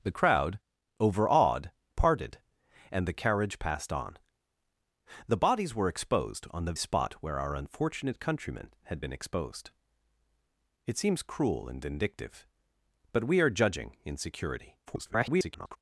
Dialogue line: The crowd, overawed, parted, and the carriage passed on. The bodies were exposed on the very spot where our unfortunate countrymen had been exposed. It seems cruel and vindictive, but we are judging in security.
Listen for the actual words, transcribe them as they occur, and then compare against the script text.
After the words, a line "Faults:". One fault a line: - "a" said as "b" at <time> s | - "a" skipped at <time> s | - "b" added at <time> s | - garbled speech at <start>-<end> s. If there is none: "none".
The crowd, overawed, parted, and the carriage passed on. The bodies were exposed on the spot where our unfortunate countrymen had been exposed. It seems cruel and vindictive, but we are judging in security. [garbled]
Faults:
- "very" skipped at 6.7 s
- garbled speech at 14.9-15.8 s